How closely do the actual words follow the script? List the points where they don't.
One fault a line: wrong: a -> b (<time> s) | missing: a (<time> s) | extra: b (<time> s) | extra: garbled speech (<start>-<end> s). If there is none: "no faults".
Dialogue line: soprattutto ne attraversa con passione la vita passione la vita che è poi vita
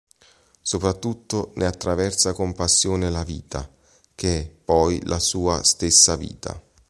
wrong: passione la vita che è poi -> che è poi la sua stessa (4.2 s)